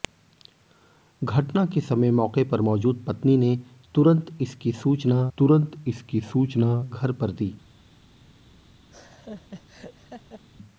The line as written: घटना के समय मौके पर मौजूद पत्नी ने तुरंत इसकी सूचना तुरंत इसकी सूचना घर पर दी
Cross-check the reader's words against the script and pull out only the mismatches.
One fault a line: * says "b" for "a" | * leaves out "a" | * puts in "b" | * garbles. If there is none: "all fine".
all fine